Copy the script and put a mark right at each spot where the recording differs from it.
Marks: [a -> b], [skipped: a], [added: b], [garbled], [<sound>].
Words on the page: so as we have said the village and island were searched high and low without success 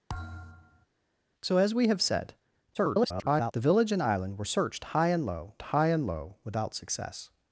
[thud] so as we have said [garbled] the village and island were searched high and low [added: high and low] without success